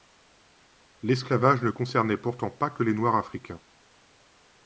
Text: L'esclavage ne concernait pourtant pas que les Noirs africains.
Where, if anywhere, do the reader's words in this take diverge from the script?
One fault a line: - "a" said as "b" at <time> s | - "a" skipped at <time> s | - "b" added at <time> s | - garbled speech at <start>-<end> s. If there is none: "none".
none